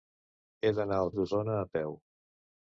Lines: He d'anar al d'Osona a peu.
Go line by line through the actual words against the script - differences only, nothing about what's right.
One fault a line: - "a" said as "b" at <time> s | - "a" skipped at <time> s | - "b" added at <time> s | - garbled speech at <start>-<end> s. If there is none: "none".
none